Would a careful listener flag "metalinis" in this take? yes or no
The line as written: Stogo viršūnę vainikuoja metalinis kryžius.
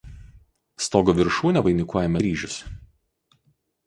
yes